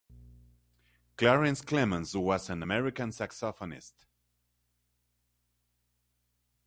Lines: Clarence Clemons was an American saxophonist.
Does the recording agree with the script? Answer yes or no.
yes